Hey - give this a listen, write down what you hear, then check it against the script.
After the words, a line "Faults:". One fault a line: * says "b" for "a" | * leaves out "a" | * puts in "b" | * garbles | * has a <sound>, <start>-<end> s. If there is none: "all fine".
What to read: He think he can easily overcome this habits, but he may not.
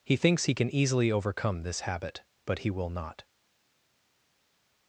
He thinks he can easily overcome this habit, but he will not.
Faults:
* says "thinks" for "think"
* says "habit" for "habits"
* says "will" for "may"